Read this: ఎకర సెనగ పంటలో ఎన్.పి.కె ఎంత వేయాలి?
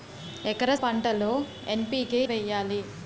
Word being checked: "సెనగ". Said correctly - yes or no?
no